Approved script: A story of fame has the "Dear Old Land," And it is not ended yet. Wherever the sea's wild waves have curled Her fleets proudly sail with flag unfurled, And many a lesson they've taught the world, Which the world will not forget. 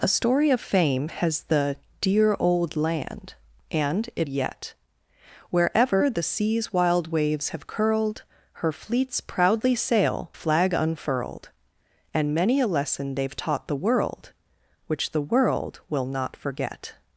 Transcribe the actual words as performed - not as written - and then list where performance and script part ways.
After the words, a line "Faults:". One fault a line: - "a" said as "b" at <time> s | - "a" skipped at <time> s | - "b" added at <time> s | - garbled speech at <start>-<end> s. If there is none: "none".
A story of fame has the "Dear Old Land," And it yet. Wherever the sea's wild waves have curled Her fleets proudly sail flag unfurled, And many a lesson they've taught the world, Which the world will not forget.
Faults:
- "is not ended" skipped at 4.3 s
- "with" skipped at 10.3 s